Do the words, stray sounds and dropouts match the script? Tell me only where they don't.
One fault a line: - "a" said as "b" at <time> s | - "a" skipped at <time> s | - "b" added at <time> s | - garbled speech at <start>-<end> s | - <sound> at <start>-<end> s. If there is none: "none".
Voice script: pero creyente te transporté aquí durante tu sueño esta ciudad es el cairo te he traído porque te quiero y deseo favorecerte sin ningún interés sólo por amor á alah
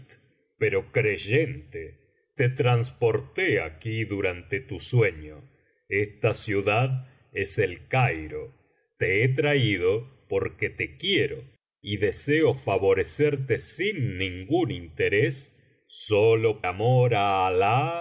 - "por" skipped at 16.6 s